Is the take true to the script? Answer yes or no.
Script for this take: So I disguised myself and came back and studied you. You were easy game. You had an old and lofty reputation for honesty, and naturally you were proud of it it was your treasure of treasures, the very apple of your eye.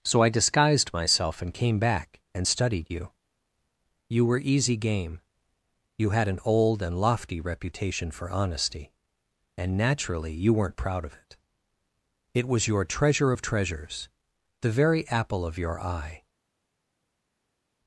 no